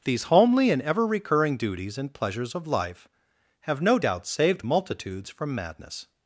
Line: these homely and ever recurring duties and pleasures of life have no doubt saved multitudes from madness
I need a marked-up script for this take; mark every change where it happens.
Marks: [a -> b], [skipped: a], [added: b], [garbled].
these homely and ever recurring duties and pleasures of life have no doubt saved multitudes from madness